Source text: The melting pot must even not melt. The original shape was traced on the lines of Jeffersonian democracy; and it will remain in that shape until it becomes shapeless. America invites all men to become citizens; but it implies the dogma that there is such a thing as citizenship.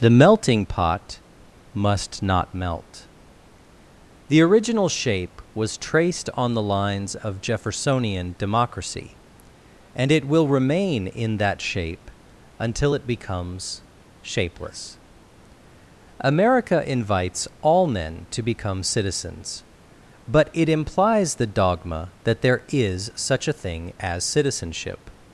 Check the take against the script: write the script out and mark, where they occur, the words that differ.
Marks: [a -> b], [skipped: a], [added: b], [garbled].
The melting pot must [skipped: even] not melt. The original shape was traced on the lines of Jeffersonian democracy; and it will remain in that shape until it becomes shapeless. America invites all men to become citizens; but it implies the dogma that there is such a thing as citizenship.